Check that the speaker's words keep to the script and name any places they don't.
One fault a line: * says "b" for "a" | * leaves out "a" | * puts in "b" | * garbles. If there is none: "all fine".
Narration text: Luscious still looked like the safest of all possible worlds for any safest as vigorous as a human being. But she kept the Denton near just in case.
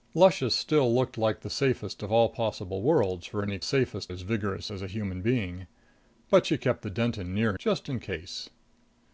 all fine